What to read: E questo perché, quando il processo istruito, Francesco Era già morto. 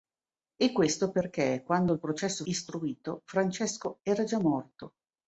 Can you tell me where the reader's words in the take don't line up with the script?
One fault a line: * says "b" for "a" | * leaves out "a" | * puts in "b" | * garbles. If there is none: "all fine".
all fine